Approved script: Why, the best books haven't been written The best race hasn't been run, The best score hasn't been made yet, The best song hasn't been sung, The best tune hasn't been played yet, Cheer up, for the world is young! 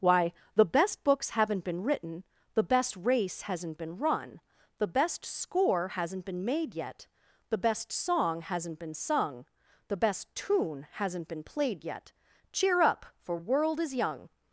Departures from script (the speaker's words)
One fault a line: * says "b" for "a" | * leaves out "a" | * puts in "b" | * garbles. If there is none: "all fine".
* leaves out "the"